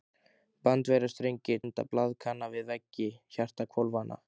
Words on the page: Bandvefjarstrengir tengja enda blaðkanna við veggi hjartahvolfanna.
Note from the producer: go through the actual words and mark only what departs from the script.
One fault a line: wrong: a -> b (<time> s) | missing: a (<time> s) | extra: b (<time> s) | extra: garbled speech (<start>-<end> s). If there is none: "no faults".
missing: tengja (1.6 s)